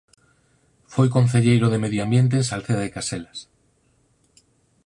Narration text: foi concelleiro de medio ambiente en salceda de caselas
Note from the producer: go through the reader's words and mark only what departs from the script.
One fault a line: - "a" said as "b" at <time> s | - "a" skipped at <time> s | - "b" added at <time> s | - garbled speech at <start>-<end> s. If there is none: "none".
none